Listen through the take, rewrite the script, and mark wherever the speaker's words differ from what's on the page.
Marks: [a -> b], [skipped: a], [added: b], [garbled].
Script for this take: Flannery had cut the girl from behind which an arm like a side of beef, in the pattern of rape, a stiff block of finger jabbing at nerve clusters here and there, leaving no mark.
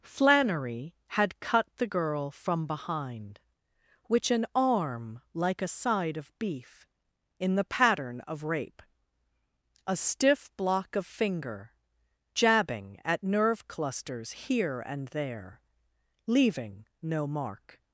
Flannery had cut the girl from behind which an arm like a side of beef, in the pattern of rape, a stiff block of finger jabbing at nerve clusters here and there, leaving no mark.